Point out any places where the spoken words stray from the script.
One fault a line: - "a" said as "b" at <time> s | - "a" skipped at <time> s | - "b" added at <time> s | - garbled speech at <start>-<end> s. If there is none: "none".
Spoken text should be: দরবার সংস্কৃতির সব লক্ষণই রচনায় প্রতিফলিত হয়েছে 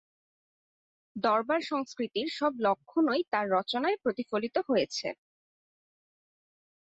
- "তাঁর" added at 3.3 s